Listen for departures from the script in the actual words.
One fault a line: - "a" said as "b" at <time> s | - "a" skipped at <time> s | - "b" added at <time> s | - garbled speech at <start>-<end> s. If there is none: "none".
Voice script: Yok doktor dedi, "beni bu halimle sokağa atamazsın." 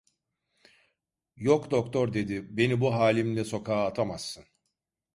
none